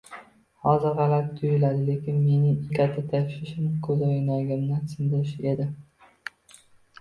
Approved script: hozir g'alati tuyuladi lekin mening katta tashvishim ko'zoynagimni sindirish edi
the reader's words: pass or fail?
pass